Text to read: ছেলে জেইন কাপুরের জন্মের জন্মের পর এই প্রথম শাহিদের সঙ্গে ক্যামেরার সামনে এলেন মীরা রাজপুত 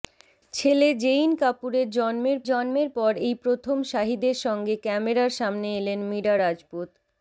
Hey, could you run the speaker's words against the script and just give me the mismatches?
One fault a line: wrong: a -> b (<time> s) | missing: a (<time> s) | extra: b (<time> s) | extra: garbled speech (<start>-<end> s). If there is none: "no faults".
no faults